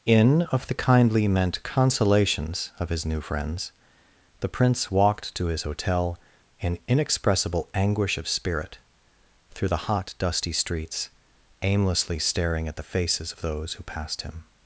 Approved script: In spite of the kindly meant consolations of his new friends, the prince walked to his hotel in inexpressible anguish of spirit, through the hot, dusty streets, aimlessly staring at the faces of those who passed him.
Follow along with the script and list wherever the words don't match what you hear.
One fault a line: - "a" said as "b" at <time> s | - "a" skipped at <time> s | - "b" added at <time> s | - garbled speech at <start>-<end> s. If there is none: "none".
- "spite" skipped at 0.4 s